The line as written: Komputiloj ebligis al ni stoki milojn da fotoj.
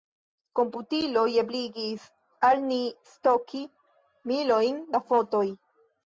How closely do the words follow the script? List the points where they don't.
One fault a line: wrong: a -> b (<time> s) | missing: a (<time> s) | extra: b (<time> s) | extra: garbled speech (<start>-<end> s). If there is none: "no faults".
no faults